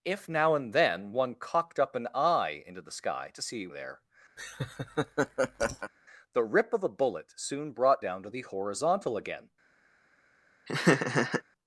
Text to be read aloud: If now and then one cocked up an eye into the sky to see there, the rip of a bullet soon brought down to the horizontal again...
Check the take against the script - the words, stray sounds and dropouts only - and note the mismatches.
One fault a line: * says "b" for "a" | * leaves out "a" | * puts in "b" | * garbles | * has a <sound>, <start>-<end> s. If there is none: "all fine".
* has a laugh, 4.4-5.9 s
* has a laugh, 10.7-11.4 s